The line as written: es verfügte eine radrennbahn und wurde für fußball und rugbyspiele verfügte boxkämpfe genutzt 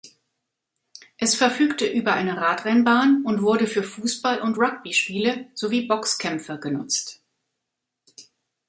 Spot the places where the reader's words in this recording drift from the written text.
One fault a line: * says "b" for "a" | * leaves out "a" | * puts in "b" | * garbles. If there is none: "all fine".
* puts in "über"
* says "sowie" for "verfügte"